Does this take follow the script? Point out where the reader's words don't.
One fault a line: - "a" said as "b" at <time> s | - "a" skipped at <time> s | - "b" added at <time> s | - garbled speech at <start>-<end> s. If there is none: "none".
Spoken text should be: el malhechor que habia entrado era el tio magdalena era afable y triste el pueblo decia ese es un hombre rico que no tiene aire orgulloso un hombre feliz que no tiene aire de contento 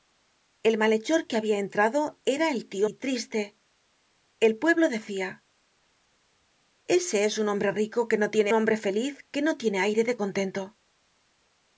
- "magdalena era afable" skipped at 2.9 s
- "aire orgulloso un" skipped at 8.5 s